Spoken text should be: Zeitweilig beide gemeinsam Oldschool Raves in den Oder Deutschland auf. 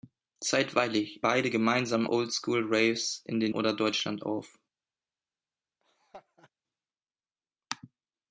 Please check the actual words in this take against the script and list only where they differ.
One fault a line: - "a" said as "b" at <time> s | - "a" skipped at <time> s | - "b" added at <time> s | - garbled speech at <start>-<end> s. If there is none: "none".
none